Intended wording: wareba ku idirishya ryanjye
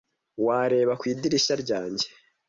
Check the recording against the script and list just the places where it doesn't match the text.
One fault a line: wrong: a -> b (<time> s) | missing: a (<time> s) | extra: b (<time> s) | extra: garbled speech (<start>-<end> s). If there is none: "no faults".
no faults